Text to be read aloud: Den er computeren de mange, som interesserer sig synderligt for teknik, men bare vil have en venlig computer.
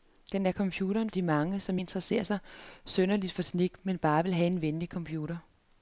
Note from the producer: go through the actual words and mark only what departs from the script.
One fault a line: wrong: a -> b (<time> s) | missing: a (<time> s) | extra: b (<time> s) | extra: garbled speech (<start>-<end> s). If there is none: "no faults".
no faults